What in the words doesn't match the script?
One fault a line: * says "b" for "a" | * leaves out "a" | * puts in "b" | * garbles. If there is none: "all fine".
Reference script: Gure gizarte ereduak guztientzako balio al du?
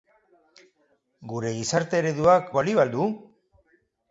* leaves out "guztientzako"